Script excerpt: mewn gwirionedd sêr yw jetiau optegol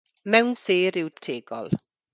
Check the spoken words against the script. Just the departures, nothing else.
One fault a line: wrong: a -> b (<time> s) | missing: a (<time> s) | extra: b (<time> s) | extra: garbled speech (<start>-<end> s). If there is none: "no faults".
missing: gwirionedd (0.6 s)
missing: jetiau (1.1 s)